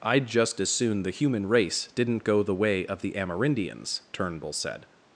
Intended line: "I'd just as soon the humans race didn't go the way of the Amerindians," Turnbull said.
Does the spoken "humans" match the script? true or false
false